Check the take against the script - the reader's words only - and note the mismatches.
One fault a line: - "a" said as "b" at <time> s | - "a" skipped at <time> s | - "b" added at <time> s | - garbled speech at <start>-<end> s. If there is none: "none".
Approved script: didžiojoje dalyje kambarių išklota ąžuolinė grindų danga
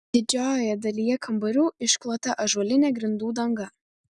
none